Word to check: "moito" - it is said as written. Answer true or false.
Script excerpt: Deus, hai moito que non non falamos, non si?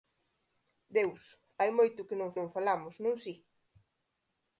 true